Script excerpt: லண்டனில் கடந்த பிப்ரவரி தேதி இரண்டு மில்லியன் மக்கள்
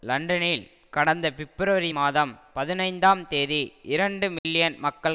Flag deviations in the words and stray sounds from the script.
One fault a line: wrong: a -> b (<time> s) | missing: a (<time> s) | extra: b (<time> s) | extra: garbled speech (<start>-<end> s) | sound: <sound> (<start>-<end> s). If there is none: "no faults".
extra: மாதம் பதினைந்தாம் (1.9 s)
sound: dropout (4.4-4.4 s)